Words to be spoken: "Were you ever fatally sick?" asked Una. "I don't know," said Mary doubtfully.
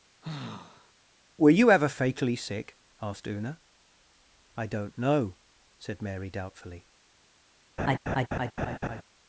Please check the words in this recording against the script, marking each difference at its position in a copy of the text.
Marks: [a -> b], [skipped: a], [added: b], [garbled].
"Were you ever fatally sick?" asked Una. "I don't know," said Mary doubtfully.